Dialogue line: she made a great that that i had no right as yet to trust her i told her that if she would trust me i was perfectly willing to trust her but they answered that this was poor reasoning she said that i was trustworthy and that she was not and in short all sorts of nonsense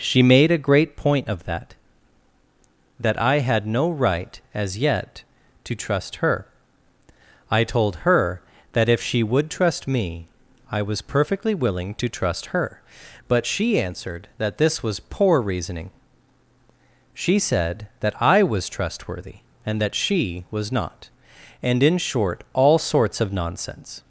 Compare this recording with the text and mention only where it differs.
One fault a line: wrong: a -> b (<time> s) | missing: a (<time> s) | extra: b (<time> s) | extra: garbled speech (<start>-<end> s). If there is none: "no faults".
extra: point of (1.0 s)
wrong: they -> she (13.4 s)